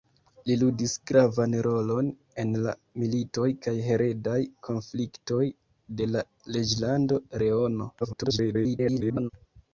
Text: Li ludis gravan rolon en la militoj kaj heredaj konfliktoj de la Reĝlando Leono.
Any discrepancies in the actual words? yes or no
yes